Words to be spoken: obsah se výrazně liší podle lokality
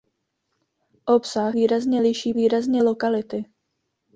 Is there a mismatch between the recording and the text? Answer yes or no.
yes